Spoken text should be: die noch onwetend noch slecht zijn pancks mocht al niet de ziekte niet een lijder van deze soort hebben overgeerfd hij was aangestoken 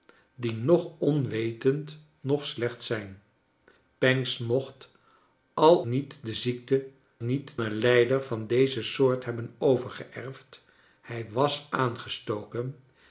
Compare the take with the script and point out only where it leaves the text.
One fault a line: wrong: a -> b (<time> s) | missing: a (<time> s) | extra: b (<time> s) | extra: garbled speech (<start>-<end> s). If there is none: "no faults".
no faults